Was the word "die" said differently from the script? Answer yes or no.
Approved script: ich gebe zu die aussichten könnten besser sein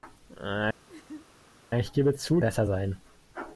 yes